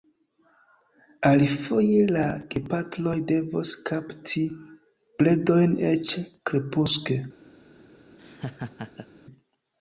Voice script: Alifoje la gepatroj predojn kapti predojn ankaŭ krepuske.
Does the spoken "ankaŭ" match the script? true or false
false